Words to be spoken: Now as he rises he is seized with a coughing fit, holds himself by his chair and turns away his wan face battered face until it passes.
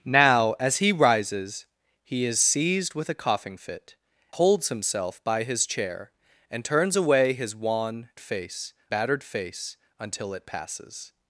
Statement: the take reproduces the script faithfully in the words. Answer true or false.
true